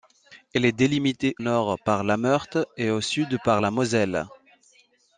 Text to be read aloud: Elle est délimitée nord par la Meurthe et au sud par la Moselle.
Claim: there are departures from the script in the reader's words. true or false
false